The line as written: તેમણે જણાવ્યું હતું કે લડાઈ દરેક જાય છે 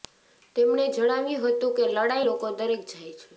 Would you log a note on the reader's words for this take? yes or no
yes